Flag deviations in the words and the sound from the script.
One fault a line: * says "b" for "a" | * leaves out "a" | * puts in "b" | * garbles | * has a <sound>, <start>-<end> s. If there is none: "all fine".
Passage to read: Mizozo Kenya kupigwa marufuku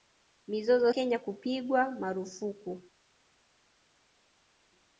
all fine